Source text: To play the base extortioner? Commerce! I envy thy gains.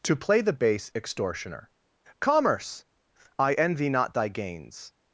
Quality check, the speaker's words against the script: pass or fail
fail